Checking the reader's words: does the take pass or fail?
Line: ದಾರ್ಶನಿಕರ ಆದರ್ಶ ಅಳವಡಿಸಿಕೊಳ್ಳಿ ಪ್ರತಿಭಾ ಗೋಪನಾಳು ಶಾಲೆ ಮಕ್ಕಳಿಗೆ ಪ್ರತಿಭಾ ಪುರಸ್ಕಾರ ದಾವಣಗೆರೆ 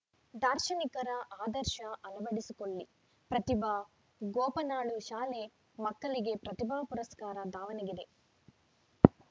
pass